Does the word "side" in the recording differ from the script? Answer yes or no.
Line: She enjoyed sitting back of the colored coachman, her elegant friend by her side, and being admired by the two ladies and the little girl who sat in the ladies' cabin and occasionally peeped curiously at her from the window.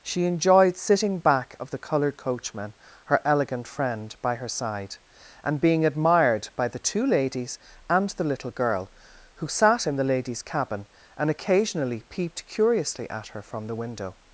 no